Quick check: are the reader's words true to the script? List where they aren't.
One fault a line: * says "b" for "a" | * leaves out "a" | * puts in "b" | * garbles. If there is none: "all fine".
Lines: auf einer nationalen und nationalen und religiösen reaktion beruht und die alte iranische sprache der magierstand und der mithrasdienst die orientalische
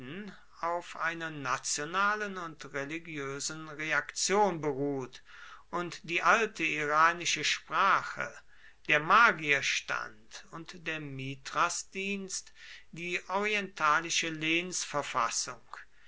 * leaves out "nationalen und"